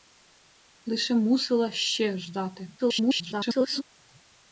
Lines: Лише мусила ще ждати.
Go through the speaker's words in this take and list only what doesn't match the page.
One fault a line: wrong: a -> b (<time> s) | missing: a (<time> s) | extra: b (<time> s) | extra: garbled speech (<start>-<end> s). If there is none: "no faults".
extra: garbled speech (2.8-3.8 s)